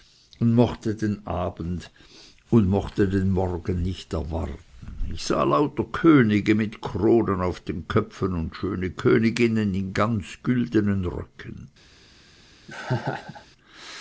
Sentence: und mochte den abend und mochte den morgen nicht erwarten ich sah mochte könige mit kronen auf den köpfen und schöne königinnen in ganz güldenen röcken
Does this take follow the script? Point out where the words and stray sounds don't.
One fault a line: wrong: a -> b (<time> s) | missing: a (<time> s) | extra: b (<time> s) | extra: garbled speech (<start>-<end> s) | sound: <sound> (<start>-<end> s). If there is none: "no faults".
wrong: mochte -> lauter (5.4 s)
sound: laugh (12.7-13.5 s)